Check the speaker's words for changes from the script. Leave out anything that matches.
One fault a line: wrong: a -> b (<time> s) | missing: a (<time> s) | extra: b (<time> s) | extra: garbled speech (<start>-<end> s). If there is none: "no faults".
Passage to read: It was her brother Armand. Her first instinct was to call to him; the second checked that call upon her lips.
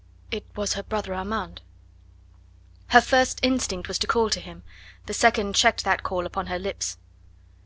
no faults